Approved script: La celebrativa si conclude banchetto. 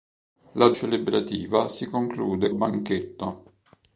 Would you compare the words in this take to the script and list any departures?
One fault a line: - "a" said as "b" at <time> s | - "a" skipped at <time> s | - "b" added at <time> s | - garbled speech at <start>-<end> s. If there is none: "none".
none